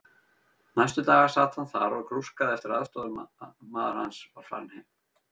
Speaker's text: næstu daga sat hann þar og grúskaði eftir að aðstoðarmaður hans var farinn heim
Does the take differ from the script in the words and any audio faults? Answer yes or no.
no